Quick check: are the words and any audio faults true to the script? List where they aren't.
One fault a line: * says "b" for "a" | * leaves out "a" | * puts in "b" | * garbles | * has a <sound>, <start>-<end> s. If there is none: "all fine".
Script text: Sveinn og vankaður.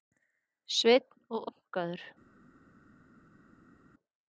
all fine